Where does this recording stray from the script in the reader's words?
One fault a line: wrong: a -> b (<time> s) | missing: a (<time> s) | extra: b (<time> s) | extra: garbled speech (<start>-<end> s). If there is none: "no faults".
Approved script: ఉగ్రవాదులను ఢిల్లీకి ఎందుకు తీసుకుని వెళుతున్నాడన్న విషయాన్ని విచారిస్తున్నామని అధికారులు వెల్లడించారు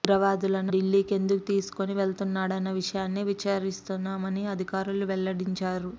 no faults